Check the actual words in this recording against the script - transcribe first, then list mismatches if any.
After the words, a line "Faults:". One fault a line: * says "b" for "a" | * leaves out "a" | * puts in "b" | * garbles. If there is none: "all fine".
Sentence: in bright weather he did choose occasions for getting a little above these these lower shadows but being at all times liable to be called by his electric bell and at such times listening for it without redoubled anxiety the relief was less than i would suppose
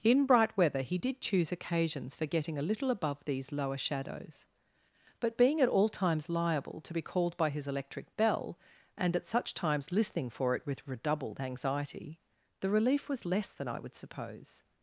in bright weather he did choose occasions for getting a little above these lower shadows but being at all times liable to be called by his electric bell and at such times listening for it with redoubled anxiety the relief was less than i would suppose
Faults:
* leaves out "these"
* says "with" for "without"